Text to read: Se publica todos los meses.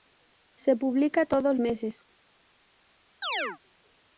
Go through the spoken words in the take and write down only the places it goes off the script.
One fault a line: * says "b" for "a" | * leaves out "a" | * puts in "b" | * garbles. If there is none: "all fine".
* leaves out "los"